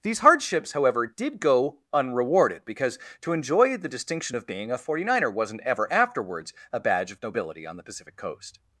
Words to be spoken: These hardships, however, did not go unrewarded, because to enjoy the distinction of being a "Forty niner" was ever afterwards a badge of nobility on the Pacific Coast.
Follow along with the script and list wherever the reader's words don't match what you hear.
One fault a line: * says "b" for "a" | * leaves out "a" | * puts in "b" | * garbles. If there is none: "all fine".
* leaves out "not"
* says "wasn't" for "was"